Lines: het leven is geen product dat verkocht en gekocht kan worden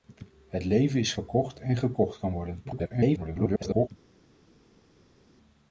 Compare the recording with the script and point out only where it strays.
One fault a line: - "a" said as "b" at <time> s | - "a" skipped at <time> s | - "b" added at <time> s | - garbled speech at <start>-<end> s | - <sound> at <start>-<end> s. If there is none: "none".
- "geen product dat" skipped at 1.1 s
- garbled speech at 2.6-3.9 s